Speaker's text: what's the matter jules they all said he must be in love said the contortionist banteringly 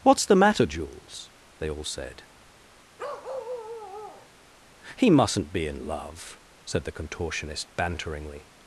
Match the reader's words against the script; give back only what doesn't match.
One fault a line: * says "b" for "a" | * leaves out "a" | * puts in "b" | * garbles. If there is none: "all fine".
* says "mustn't" for "must"